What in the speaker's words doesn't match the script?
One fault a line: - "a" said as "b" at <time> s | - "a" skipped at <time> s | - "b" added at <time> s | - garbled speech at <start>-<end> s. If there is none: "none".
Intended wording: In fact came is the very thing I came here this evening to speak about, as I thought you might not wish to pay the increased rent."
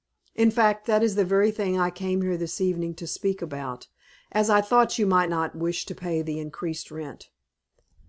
- "came" said as "that" at 0.9 s